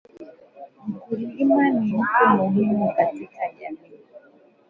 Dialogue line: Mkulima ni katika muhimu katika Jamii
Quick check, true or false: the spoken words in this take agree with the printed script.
false